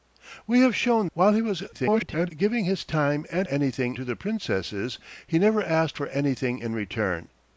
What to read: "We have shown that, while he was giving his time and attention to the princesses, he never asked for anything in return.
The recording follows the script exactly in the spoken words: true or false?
false